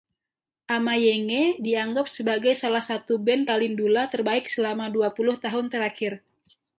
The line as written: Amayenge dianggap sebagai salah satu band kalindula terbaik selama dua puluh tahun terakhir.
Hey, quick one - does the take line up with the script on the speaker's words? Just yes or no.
yes